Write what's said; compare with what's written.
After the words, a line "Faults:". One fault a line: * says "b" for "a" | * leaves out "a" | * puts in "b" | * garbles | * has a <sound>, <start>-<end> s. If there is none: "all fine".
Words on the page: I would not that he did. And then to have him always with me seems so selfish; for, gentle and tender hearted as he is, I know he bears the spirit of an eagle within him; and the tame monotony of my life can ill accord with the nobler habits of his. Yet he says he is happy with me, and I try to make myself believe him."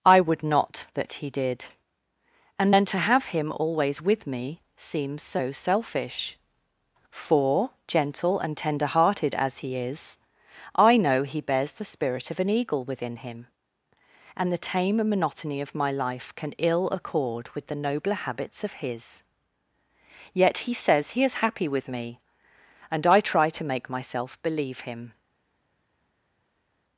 I would not that he did. And then to have him always with me seems so selfish; for, gentle and tender hearted as he is, I know he bears the spirit of an eagle within him; and the tame monotony of my life can ill accord with the nobler habits of his. Yet he says he is happy with me, and I try to make myself believe him."
Faults:
all fine